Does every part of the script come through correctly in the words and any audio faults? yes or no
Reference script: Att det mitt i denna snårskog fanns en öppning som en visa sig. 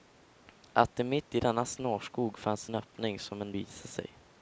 yes